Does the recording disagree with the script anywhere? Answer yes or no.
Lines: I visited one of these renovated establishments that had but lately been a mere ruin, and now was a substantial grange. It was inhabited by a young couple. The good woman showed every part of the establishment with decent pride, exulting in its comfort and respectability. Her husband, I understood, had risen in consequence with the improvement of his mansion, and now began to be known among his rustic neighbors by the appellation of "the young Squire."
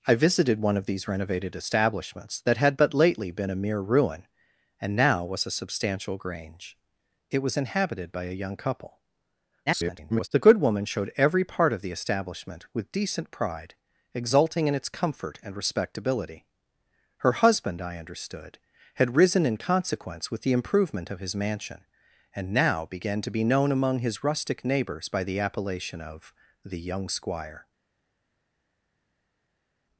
yes